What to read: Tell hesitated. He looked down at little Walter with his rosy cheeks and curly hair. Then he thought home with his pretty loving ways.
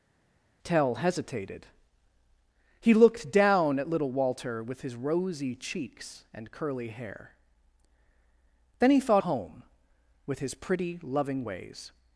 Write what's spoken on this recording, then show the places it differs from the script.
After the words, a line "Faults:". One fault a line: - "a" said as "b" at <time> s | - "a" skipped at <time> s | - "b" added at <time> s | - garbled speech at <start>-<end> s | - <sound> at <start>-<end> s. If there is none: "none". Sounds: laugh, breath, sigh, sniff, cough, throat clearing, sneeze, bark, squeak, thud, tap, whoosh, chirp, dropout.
Tell hesitated. He looked down at little Walter with his rosy cheeks and curly hair. Then he thought home with his pretty loving ways.
Faults:
none